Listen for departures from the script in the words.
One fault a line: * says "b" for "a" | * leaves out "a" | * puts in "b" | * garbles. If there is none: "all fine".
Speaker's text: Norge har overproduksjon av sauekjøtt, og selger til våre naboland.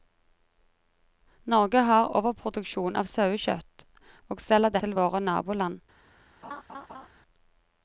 all fine